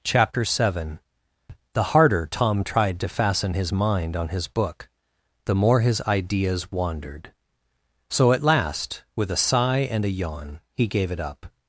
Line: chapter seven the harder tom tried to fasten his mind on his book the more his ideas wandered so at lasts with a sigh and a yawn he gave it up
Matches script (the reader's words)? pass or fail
fail